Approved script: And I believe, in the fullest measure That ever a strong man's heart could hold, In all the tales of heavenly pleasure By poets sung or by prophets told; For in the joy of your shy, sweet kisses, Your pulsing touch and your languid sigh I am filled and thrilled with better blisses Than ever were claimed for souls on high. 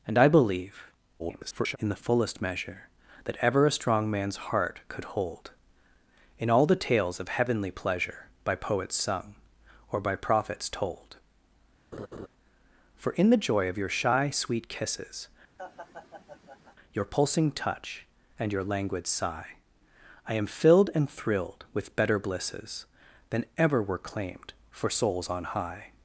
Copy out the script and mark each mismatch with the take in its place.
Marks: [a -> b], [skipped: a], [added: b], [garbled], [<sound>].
And I believe, [garbled] in the fullest measure That ever a strong man's heart could hold, In all the tales of heavenly pleasure By poets sung or by prophets told; [laugh] For in the joy of your shy, sweet kisses, [laugh] Your pulsing touch and your languid sigh I am filled and thrilled with better blisses Than ever were claimed for souls on high.